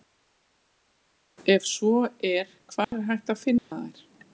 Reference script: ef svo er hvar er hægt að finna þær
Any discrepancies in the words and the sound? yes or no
yes